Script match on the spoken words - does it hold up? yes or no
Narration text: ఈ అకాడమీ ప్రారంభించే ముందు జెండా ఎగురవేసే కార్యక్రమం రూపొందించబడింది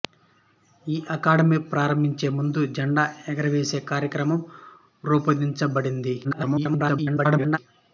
no